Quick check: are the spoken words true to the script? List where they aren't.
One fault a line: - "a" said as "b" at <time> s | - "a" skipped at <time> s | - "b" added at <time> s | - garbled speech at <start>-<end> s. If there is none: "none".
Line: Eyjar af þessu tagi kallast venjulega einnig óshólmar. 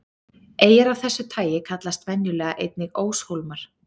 none